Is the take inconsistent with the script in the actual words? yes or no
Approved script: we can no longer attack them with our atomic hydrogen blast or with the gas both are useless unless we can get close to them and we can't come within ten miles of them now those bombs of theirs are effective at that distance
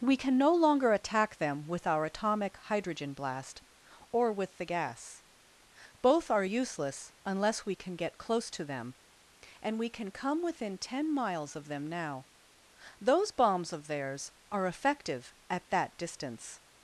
yes